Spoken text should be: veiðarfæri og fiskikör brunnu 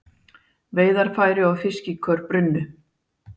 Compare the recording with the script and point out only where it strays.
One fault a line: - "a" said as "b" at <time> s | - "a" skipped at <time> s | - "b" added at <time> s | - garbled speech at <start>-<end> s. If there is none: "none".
none